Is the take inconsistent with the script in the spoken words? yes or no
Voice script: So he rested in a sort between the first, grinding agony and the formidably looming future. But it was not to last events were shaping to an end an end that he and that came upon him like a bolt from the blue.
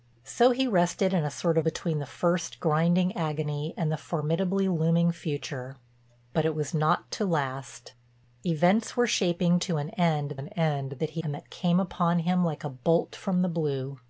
no